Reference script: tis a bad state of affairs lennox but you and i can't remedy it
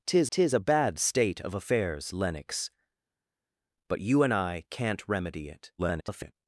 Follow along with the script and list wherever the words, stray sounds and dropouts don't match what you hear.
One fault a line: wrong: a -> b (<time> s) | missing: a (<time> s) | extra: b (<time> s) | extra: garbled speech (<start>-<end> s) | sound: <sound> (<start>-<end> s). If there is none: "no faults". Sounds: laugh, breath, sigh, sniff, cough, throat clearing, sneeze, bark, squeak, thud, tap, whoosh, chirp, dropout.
extra: tis (0.3 s)
extra: garbled speech (5.8-6.3 s)